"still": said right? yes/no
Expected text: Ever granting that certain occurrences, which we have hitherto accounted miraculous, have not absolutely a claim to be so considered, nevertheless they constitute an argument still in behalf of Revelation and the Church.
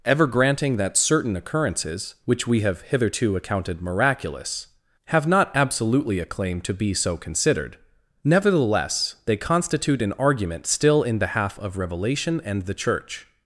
yes